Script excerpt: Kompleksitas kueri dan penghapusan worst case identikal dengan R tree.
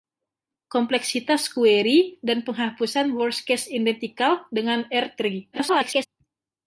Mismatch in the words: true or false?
true